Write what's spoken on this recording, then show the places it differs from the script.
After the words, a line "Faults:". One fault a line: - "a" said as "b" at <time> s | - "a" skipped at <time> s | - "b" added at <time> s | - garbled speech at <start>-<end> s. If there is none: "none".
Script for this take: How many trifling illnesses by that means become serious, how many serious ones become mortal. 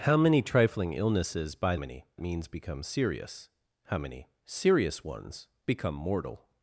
How many trifling illnesses by many means become serious, how many serious ones become mortal.
Faults:
- "that" said as "many" at 1.7 s